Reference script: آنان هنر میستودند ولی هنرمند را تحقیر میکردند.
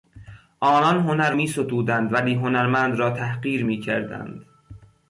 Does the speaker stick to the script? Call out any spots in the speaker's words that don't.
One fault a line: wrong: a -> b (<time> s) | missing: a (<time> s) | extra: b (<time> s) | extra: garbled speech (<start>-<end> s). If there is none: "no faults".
no faults